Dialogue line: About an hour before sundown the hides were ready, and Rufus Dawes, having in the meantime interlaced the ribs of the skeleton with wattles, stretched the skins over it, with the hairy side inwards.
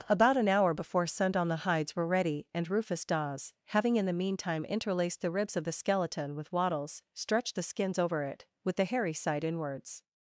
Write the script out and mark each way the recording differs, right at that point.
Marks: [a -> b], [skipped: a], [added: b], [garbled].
About an hour before sundown the hides were ready, and Rufus Dawes, having in the meantime interlaced the ribs of the skeleton with wattles, stretched the skins over it, with the hairy side inwards.